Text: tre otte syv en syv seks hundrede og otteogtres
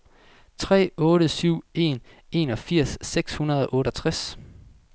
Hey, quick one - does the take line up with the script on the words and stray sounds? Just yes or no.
no